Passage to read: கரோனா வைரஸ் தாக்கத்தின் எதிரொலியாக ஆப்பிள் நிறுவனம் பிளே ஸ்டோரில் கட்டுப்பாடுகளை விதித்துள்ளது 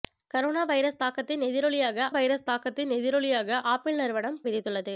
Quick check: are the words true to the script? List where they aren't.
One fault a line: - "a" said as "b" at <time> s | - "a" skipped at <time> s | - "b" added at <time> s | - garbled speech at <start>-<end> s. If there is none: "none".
- "ஆப்பிள் நிறுவனம் பிளே ஸ்டோரில் கட்டுப்பாடுகளை" said as "வைரஸ் தாக்கத்தின் எதிரொலியாக ஆப்பிள் நிறுவனம்" at 2.1 s